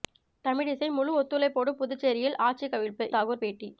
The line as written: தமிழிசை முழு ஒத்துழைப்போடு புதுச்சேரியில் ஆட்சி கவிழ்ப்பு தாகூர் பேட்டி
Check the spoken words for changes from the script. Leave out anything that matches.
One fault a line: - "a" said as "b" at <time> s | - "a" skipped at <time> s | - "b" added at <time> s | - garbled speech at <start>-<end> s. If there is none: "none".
none